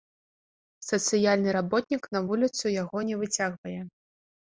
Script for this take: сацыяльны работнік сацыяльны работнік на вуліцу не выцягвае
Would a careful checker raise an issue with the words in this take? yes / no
yes